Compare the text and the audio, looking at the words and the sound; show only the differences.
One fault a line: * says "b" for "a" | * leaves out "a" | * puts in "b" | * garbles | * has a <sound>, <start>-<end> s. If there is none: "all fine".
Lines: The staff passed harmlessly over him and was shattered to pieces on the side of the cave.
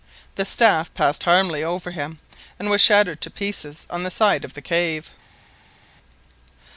all fine